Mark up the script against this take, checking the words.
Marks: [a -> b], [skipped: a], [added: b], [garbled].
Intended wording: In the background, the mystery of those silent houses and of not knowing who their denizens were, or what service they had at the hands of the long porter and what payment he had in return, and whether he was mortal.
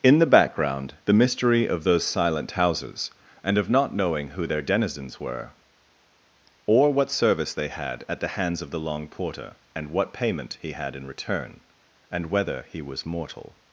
In the background, the mystery of those silent houses and of not knowing who their denizens were, or what service they had at the hands of the long porter and what payment he had in return, and whether he was mortal.